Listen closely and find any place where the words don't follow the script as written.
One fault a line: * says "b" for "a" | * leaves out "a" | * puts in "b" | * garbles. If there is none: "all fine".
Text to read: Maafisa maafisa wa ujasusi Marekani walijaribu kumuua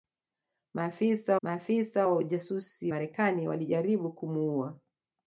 all fine